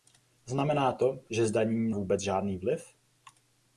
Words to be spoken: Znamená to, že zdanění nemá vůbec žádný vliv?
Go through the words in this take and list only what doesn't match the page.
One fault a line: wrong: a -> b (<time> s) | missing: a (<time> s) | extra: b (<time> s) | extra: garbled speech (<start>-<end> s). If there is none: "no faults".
missing: nemá (1.9 s)